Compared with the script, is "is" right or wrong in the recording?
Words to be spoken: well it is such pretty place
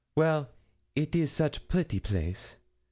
right